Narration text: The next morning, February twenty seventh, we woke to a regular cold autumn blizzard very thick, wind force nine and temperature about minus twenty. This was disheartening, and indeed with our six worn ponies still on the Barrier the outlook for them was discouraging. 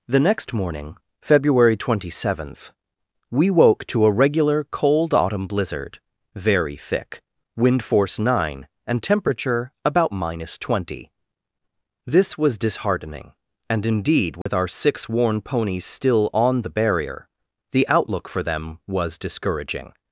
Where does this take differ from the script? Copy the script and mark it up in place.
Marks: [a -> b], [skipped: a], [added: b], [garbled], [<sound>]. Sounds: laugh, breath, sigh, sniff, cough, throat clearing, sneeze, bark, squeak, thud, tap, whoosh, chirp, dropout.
The next morning, February twenty seventh, we woke to a regular cold autumn blizzard very thick, wind force nine and temperature about minus twenty. This was disheartening, and indeed with [dropout] our six worn ponies still on the Barrier the outlook for them was discouraging.